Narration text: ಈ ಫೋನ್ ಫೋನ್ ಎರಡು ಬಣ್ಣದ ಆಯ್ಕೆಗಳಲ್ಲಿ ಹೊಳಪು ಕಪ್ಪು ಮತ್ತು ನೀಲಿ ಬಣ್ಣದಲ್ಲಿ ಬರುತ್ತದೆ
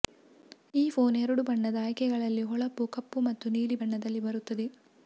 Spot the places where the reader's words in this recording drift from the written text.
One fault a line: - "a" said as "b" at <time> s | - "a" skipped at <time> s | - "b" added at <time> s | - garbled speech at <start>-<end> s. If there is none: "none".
- "ಫೋನ್" skipped at 1.1 s